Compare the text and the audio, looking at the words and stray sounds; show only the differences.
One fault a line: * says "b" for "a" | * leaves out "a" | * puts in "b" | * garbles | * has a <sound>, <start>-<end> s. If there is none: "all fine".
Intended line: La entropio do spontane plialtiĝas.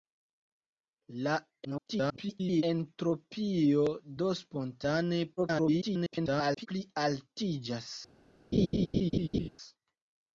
* garbles
* garbles
* has a laugh, 8.5-9.5 s